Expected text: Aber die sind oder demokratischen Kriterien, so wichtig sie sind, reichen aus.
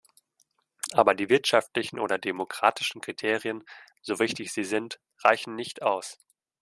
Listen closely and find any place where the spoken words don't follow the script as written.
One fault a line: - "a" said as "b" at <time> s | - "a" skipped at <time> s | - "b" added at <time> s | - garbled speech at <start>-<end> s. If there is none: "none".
- "sind" said as "wirtschaftlichen" at 1.3 s
- "nicht" added at 5.5 s